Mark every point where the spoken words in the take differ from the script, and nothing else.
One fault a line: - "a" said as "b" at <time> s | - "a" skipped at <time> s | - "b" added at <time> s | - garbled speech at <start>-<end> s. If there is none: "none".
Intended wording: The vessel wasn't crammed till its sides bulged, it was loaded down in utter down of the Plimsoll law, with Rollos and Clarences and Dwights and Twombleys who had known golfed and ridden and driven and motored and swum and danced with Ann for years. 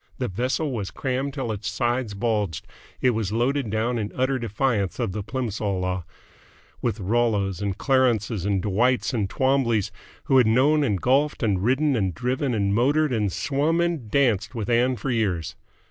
- "wasn't" said as "was" at 0.7 s
- "down" said as "defiance" at 4.4 s
- "and" added at 10.8 s